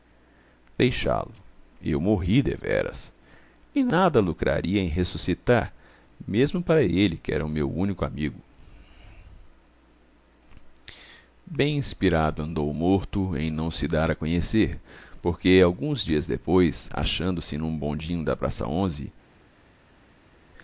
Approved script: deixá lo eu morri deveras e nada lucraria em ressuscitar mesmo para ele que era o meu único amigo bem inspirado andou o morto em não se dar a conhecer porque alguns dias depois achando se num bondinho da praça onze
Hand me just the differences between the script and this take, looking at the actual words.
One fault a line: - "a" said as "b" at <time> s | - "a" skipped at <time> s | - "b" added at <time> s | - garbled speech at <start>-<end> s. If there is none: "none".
none